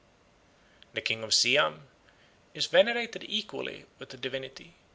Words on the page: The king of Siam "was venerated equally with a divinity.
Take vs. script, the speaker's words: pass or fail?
fail